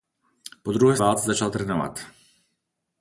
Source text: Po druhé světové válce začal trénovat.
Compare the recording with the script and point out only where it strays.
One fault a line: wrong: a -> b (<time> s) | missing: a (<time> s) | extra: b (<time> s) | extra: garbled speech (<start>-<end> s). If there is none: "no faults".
missing: světové (1.0 s)